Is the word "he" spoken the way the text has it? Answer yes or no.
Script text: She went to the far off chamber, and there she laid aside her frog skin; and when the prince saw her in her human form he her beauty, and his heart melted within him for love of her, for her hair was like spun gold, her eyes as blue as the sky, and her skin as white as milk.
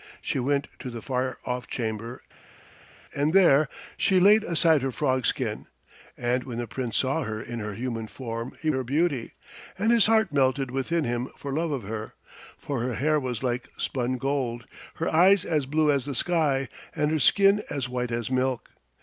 yes